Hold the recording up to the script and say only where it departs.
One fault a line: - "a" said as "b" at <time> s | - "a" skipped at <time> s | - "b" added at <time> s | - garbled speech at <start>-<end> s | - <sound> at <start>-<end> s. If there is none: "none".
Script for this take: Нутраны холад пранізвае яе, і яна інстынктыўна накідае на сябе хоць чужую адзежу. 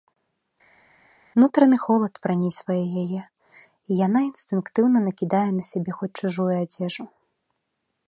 none